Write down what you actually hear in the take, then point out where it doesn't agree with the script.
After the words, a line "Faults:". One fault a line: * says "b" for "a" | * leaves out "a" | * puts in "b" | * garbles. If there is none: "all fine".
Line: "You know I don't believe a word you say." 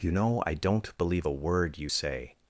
"You know I don't believe a word you say."
Faults:
all fine